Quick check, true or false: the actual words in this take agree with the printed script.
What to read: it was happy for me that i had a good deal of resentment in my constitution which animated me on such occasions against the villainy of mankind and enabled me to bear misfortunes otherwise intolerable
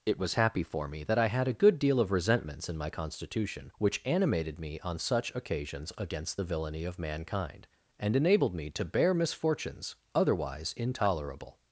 false